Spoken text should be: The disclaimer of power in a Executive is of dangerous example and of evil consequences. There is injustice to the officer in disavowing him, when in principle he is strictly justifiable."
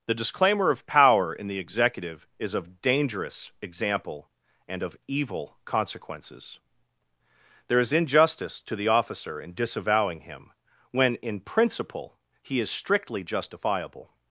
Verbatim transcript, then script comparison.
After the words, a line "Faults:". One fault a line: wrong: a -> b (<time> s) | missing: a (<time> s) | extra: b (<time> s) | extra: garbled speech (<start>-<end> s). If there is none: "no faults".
The disclaimer of power in the Executive is of dangerous example and of evil consequences. There is injustice to the officer in disavowing him, when in principle he is strictly justifiable."
Faults:
wrong: a -> the (1.5 s)